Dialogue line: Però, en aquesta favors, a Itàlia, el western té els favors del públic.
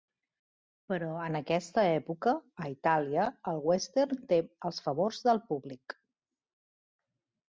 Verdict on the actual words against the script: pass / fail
fail